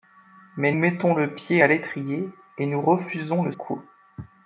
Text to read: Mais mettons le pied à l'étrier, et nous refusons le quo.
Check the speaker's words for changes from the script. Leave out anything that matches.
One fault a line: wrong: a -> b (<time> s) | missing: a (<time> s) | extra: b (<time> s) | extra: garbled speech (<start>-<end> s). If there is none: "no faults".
no faults